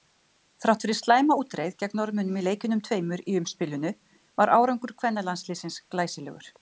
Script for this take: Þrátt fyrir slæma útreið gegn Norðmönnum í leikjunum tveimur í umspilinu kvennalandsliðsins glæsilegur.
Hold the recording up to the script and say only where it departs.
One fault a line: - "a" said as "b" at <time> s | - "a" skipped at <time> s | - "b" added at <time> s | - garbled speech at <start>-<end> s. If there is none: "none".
- "var árangur" added at 4.4 s